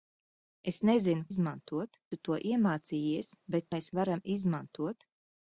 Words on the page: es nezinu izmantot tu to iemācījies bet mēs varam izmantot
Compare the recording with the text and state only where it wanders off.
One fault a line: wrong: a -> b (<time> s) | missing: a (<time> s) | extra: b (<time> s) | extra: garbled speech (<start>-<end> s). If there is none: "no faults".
no faults